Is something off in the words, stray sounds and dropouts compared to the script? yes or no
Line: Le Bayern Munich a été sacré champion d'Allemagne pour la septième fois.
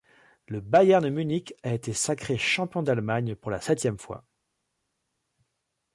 no